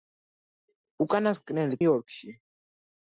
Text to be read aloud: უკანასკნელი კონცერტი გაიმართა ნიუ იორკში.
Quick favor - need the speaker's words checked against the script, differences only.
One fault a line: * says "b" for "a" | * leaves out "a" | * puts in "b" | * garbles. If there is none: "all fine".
* leaves out "კონცერტი გაიმართა ნიუ"